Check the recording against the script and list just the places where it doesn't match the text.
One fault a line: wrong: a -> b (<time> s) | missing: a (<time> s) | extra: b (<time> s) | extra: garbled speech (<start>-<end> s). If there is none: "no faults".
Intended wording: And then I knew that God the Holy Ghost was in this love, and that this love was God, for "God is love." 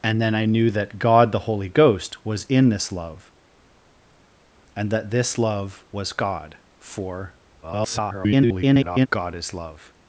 extra: garbled speech (7.6-9.1 s)